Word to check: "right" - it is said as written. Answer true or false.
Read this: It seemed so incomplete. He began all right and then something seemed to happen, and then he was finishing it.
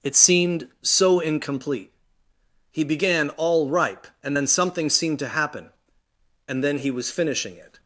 false